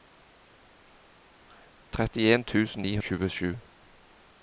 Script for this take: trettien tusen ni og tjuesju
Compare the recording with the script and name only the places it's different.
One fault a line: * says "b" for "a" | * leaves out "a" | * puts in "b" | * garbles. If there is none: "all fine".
all fine